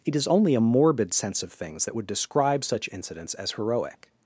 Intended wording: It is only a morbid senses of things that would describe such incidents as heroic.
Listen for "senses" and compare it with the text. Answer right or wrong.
wrong